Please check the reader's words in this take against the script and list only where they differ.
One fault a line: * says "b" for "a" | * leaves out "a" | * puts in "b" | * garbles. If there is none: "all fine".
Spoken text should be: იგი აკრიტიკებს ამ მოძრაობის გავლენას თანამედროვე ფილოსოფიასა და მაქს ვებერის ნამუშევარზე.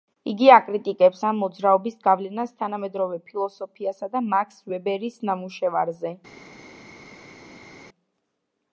all fine